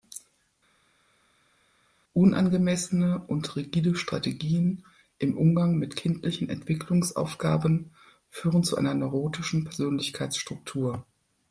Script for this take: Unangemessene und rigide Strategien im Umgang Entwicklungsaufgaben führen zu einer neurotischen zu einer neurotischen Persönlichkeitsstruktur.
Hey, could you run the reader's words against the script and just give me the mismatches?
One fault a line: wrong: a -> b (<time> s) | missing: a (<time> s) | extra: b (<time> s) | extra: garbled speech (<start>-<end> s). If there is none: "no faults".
extra: mit kindlichen (5.8 s)
missing: zu einer neurotischen (9.7 s)